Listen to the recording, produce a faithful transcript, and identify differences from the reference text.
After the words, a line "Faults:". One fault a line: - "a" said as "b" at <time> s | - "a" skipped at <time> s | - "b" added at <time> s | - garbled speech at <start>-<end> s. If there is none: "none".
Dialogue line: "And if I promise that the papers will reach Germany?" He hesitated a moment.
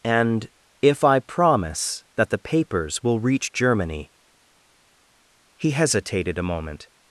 "And if I promise that the papers will reach Germany?" He hesitated a moment.
Faults:
none